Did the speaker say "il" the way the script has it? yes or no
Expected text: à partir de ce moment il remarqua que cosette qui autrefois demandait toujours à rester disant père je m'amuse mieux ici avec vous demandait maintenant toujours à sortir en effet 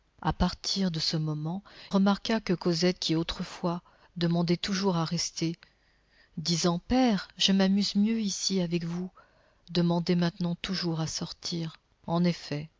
no